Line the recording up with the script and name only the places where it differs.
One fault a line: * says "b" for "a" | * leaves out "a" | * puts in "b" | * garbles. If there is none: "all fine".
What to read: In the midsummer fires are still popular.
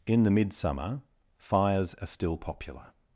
all fine